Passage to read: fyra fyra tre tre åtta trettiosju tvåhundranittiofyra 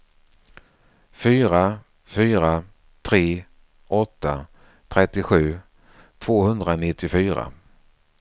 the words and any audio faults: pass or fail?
fail